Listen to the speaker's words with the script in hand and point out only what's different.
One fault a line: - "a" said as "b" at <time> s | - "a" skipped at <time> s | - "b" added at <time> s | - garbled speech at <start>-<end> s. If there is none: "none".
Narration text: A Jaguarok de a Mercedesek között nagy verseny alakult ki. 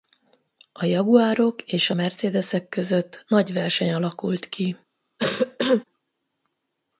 - "de" said as "és" at 1.6 s